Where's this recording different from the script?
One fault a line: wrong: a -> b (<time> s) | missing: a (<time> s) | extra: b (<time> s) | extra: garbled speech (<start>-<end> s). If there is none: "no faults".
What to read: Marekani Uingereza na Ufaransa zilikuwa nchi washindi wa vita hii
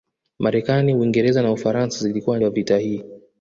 missing: nchi washindi (2.4 s)